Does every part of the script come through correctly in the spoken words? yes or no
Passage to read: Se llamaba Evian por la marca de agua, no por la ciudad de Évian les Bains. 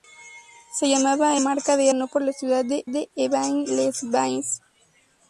no